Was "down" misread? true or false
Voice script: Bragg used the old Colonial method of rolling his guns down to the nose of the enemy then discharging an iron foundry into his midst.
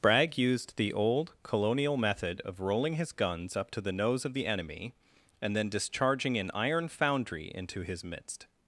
true